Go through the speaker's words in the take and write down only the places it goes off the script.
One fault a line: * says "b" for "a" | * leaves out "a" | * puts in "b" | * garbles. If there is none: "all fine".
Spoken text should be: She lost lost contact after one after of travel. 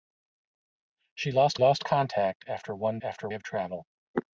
all fine